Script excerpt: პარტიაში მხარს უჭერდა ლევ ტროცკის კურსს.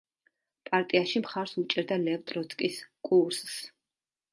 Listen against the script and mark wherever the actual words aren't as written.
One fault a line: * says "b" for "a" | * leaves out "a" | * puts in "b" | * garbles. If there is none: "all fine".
all fine